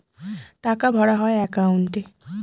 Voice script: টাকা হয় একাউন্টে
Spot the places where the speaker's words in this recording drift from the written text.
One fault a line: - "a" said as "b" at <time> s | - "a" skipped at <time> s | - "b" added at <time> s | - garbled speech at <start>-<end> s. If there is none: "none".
- "ভরা" added at 0.9 s